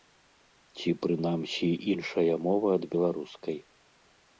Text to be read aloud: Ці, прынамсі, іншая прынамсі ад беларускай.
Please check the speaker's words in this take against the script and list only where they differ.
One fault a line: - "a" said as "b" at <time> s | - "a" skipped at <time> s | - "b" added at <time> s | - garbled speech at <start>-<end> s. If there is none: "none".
- "прынамсі" said as "мова" at 2.5 s